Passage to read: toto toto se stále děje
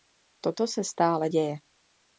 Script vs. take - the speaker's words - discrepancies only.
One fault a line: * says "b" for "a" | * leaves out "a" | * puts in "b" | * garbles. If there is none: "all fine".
* leaves out "toto"